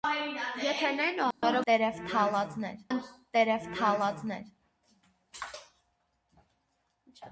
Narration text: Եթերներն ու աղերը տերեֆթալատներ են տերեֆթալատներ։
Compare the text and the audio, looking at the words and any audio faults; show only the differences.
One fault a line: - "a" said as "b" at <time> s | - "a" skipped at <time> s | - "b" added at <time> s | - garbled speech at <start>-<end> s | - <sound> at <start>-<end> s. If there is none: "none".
- dropout at 1.3-1.4 s